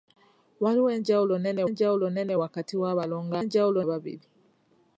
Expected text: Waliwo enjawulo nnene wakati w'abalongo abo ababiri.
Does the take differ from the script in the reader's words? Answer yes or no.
yes